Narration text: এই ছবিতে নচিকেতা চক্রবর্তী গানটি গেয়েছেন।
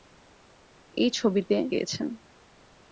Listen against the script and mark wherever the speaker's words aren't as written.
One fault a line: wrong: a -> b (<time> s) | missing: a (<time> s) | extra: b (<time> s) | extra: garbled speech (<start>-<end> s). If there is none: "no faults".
missing: নচিকেতা চক্রবর্তী গানটি (1.6 s)